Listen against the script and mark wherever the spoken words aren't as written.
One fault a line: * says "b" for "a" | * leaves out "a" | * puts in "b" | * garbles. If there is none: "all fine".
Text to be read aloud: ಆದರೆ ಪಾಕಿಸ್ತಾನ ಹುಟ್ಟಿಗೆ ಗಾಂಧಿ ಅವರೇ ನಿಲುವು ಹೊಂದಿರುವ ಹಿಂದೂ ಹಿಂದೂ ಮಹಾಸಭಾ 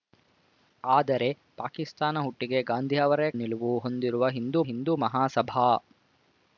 all fine